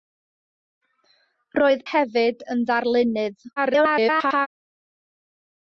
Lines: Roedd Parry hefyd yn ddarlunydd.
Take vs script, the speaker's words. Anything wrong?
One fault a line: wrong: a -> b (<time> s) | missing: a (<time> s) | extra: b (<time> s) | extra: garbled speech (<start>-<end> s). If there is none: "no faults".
missing: Parry (1.8 s)
extra: garbled speech (3.6-4.5 s)